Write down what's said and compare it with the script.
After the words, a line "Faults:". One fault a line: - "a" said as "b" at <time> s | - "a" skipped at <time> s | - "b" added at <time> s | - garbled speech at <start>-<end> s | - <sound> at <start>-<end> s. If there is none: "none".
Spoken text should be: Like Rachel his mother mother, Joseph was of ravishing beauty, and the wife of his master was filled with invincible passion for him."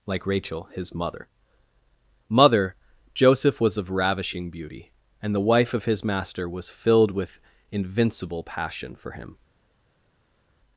Like Rachel his mother mother, Joseph was of ravishing beauty, and the wife of his master was filled with invincible passion for him."
Faults:
none